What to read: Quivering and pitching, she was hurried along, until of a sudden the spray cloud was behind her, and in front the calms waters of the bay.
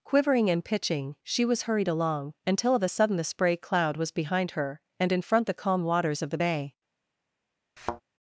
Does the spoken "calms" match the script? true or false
false